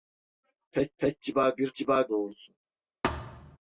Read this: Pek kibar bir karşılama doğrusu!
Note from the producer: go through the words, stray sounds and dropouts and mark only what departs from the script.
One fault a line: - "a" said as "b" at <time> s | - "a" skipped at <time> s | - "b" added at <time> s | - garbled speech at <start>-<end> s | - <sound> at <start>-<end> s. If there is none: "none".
- "pek" added at 1.0 s
- "karşılama" said as "kibar" at 1.7 s
- thud at 3.0-3.6 s